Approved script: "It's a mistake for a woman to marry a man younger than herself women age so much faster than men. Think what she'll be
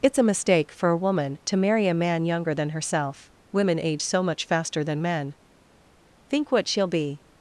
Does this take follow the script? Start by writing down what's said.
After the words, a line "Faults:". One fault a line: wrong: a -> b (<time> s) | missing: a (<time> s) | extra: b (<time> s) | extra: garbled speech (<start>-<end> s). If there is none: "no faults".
"It's a mistake for a woman to marry a man younger than herself women age so much faster than men. Think what she'll be
Faults:
no faults